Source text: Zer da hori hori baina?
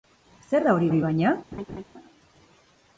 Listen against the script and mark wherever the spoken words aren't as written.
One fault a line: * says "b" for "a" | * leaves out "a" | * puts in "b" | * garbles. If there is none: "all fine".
all fine